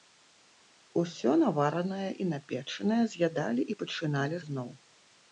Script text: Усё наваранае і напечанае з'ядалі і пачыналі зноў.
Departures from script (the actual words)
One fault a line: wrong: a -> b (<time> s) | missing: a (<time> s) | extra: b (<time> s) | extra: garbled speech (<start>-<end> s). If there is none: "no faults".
no faults